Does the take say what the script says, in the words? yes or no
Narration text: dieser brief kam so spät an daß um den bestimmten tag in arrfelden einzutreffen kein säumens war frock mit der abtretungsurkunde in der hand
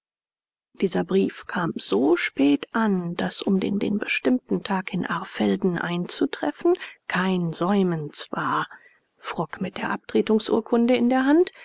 no